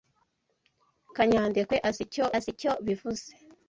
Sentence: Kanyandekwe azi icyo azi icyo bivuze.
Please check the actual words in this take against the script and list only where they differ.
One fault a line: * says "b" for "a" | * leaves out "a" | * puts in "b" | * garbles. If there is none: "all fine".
all fine